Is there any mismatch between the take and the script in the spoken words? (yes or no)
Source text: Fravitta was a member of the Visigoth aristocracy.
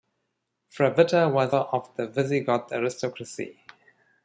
yes